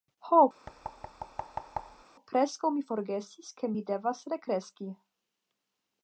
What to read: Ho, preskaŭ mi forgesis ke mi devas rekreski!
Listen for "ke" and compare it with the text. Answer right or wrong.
right